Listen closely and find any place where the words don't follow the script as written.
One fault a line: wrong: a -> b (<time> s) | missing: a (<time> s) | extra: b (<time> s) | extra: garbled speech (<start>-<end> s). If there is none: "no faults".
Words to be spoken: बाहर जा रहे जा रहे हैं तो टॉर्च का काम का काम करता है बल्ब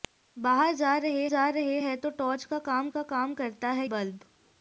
no faults